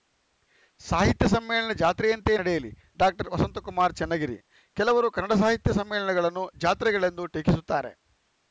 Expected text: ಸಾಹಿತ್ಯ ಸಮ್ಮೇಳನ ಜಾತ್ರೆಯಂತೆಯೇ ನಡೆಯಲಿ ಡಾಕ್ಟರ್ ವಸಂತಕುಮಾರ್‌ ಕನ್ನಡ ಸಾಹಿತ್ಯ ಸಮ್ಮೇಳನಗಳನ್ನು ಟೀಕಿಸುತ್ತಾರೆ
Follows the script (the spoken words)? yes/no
no